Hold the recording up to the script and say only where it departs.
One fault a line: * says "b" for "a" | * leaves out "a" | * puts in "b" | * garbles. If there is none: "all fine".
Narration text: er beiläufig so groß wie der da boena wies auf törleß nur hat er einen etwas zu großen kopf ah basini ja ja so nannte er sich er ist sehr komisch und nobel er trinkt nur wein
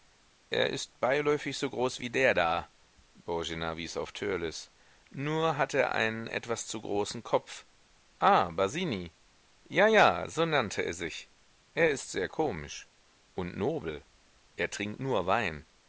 * puts in "ist"